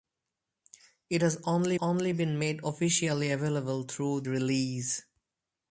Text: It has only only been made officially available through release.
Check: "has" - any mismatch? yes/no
no